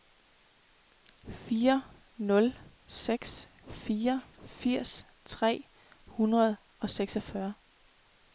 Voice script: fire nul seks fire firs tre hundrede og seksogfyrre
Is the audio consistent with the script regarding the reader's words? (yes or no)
yes